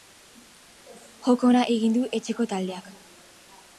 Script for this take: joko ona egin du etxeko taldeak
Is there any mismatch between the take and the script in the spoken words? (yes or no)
no